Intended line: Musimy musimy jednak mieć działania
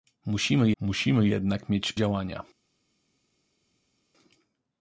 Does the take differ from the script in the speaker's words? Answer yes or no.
no